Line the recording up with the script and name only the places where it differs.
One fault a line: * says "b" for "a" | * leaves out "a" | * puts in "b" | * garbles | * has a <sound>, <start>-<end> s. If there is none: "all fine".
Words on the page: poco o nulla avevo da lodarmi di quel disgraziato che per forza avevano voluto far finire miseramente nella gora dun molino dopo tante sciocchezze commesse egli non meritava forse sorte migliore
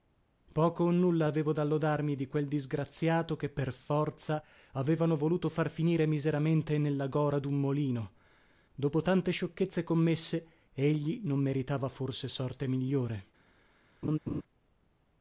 * has a laugh, 14.0-14.4 s